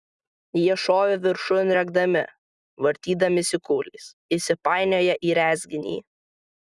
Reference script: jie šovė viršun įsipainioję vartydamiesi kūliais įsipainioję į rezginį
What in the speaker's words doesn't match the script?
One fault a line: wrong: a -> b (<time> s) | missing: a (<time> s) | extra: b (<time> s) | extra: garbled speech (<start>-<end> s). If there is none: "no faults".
wrong: įsipainioję -> rėkdami (1.8 s)